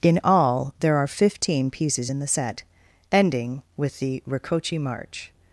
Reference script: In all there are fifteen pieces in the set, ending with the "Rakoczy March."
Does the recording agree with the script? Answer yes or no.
yes